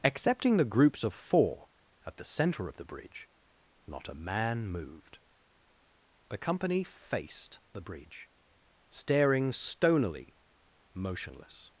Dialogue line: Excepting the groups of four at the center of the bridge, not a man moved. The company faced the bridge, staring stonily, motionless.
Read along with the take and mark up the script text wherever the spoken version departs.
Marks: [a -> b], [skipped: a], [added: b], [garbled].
Excepting the groups of four at the center of the bridge, not a man moved. The company faced the bridge, staring stonily, motionless.